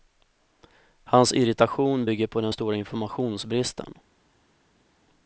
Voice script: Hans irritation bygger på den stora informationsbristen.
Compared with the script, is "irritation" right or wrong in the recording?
right